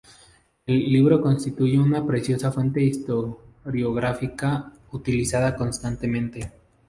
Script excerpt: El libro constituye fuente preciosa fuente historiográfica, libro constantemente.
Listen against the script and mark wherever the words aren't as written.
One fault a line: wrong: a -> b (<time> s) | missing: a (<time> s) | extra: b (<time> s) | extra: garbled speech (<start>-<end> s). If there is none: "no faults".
wrong: fuente -> una (1.8 s)
wrong: libro -> utilizada (4.9 s)